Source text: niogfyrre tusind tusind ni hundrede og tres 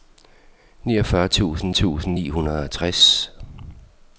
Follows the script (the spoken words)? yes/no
yes